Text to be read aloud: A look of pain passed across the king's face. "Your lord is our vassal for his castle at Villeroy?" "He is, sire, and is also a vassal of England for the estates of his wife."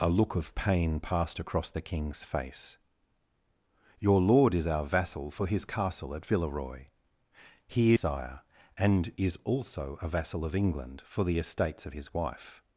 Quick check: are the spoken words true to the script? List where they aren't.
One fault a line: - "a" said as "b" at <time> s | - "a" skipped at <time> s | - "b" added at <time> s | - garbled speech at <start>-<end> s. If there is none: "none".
- "is" skipped at 7.9 s